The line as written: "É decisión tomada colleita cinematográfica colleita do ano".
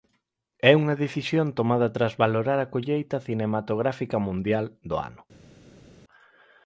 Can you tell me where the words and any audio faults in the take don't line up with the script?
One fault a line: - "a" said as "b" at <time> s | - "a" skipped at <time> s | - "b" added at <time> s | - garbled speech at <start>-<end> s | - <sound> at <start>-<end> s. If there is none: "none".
- "unha" added at 0.8 s
- "tras valorar a" added at 1.9 s
- "colleita" said as "mundial" at 4.3 s